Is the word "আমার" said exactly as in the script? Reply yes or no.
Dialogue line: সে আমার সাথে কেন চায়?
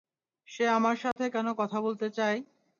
yes